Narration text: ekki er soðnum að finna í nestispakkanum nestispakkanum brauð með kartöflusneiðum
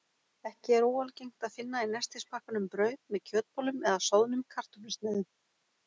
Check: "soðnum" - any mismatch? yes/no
yes